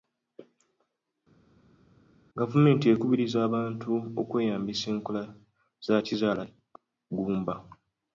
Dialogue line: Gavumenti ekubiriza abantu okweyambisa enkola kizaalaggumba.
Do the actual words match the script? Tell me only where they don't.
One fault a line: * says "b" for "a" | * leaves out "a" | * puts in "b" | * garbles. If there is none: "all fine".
* puts in "za"